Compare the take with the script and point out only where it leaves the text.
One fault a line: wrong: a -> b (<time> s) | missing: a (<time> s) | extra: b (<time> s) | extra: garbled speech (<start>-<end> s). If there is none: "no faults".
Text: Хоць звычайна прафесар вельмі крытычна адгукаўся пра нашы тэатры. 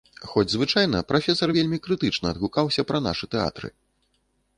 no faults